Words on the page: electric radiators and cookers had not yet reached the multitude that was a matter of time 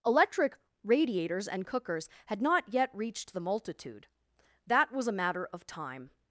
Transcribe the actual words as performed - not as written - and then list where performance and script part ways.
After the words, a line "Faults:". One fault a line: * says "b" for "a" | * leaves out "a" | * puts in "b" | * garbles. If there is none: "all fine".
electric radiators and cookers had not yet reached the multitude that was a matter of time
Faults:
all fine